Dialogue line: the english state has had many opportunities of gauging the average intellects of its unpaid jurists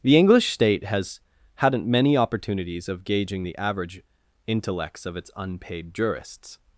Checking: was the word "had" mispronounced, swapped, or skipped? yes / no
yes